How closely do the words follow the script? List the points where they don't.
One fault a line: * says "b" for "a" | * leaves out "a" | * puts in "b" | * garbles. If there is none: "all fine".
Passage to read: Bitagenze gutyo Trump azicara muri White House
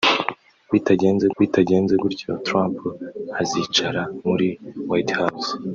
* puts in "bitagenze"